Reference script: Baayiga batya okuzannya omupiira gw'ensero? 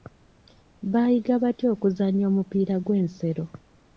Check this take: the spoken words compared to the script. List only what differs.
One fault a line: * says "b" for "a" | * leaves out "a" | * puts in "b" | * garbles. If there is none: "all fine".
all fine